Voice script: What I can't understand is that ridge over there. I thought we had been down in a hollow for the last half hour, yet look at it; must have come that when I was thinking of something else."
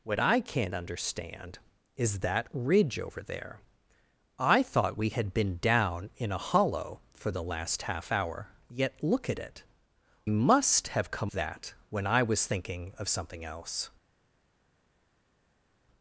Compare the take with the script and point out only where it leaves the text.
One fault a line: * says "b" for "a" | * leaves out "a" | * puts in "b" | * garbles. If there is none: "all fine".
all fine